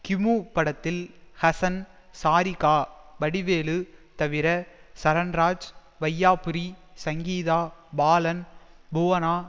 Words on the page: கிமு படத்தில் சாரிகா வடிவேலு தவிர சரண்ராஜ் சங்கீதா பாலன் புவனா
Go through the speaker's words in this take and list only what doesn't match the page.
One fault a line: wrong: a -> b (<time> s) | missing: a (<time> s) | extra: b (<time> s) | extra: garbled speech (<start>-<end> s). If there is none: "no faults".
extra: ஹசன் (1.4 s)
extra: வையாபுரி (6.0 s)